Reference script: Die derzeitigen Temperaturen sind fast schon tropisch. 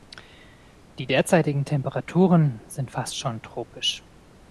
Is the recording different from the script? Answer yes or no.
no